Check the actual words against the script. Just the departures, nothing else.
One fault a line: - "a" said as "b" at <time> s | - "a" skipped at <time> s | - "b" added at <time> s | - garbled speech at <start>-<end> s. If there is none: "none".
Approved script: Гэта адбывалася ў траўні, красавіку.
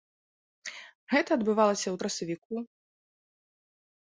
- "траўні" skipped at 2.0 s